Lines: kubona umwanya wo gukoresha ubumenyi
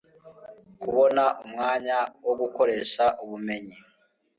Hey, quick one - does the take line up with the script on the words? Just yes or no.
yes